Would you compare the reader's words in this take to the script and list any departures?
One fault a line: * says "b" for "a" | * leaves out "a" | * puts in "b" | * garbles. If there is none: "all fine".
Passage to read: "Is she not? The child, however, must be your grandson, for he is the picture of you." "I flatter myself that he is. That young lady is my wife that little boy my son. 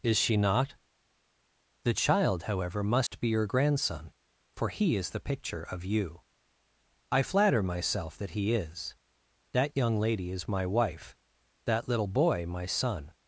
all fine